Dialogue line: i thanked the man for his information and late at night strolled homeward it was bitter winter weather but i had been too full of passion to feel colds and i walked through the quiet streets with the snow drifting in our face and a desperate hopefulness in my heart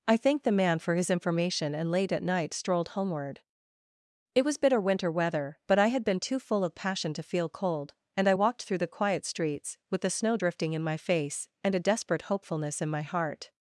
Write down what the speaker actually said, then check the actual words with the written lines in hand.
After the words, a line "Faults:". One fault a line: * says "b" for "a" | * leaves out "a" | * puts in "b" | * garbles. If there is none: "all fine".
i thanked the man for his information and late at night strolled homeward it was bitter winter weather but i had been too full of passion to feel cold and i walked through the quiet streets with the snow drifting in my face and a desperate hopefulness in my heart
Faults:
* says "cold" for "colds"
* says "my" for "our"